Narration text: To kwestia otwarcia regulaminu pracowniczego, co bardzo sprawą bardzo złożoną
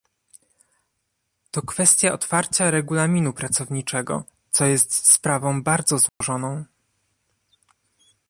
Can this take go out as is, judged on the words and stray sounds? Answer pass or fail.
fail